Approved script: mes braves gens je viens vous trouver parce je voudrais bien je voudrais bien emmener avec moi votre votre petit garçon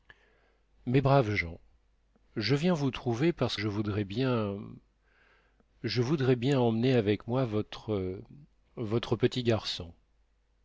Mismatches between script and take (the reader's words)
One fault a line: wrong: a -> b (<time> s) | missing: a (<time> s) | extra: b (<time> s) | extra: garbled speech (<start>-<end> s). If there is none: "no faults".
no faults